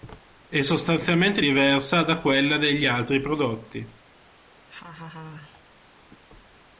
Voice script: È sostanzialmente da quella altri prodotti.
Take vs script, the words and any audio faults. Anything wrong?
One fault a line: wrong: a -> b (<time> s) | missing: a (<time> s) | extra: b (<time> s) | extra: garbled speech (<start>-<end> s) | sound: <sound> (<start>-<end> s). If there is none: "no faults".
extra: diversa (1.4 s)
extra: degli (2.6 s)
sound: laugh (4.7-5.6 s)